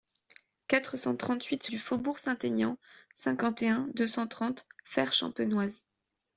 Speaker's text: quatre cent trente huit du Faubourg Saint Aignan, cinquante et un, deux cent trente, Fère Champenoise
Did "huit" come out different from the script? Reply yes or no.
no